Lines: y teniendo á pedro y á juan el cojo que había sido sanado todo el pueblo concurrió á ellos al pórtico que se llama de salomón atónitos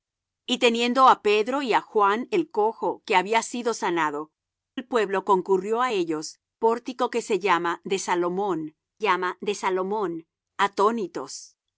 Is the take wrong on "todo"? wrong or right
wrong